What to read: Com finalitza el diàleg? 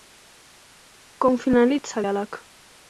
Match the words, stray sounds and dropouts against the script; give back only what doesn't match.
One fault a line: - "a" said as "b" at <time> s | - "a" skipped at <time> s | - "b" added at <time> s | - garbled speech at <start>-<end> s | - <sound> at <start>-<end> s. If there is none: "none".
- "el" skipped at 2.0 s